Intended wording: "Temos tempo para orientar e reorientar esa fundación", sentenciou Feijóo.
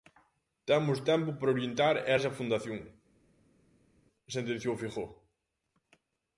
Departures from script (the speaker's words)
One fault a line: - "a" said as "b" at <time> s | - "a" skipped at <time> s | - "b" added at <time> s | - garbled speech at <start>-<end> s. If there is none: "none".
- "reorientar" skipped at 2.1 s